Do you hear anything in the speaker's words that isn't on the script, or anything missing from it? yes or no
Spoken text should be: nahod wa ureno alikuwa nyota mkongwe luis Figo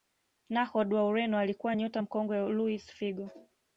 no